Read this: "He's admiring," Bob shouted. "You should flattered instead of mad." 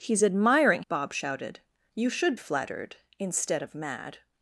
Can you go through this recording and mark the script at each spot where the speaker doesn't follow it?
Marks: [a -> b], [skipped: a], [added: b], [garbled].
"He's admiring," Bob shouted. "You should flattered instead of mad."